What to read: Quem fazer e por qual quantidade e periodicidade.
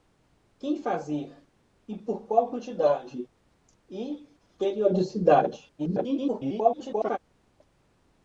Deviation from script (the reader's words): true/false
true